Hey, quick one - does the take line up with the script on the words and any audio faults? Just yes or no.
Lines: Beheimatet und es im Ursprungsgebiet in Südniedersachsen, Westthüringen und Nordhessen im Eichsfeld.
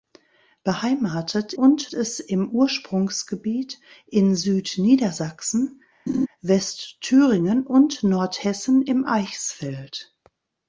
no